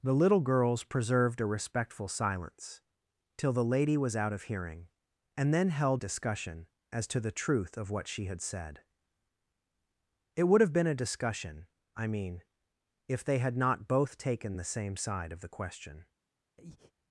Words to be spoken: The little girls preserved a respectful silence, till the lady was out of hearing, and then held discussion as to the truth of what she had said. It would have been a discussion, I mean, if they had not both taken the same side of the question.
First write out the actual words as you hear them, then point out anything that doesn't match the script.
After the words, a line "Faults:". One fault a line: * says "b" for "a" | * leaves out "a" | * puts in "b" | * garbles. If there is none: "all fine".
The little girls preserved a respectful silence, till the lady was out of hearing, and then held discussion as to the truth of what she had said. It would have been a discussion, I mean, if they had not both taken the same side of the question.
Faults:
all fine